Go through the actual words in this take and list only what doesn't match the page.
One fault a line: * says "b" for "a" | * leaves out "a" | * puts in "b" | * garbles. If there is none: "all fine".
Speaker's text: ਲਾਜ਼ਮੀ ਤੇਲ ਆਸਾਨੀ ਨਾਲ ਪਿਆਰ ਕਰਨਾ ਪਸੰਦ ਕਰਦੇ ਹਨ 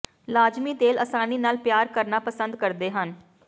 all fine